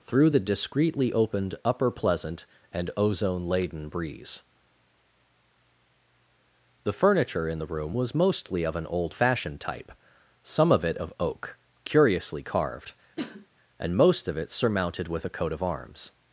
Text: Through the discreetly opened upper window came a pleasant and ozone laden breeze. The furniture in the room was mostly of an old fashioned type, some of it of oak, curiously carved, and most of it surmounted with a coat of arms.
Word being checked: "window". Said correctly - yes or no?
no